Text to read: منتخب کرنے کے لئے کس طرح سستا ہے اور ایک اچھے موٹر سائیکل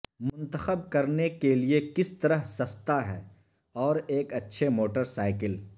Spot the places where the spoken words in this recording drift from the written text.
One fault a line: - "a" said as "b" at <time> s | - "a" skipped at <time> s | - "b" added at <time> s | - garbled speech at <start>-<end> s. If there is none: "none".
none